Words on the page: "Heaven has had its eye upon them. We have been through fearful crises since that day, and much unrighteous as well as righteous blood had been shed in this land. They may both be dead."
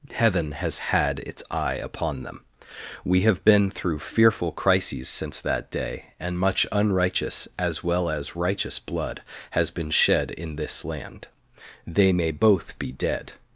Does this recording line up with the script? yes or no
no